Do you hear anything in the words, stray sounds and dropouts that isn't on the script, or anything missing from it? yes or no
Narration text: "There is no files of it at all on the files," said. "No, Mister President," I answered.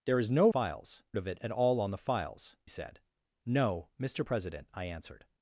no